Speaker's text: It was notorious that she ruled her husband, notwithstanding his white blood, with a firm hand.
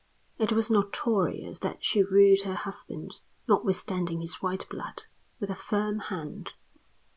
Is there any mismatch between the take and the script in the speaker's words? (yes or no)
no